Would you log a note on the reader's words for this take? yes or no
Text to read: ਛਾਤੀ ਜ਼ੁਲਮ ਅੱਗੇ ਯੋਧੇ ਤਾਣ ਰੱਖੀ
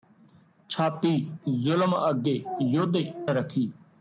yes